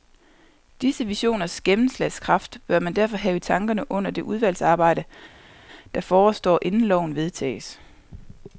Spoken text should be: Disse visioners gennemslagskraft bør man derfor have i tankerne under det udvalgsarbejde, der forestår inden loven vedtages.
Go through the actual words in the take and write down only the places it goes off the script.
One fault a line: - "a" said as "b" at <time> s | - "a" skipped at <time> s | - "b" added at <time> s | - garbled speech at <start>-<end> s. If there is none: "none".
none